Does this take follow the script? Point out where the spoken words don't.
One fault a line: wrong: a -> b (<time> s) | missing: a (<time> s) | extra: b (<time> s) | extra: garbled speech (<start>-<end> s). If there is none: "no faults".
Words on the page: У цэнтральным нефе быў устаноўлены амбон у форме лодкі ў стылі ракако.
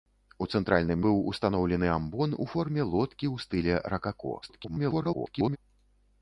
missing: нефе (1.0 s)
extra: garbled speech (4.4-5.6 s)